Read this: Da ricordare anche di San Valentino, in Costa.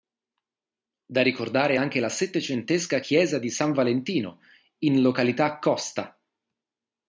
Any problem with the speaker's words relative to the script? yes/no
yes